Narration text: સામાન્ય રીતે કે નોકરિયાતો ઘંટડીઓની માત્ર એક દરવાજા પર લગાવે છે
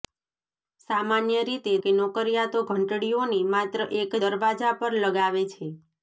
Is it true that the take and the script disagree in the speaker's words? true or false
false